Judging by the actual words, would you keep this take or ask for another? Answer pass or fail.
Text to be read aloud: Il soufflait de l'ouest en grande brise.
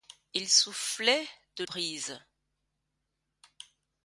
fail